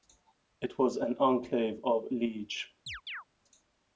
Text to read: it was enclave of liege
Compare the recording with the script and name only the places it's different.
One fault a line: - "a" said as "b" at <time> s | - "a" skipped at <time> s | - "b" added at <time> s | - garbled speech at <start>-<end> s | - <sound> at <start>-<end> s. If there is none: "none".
- "an" added at 1.0 s
- chirp at 2.9-3.2 s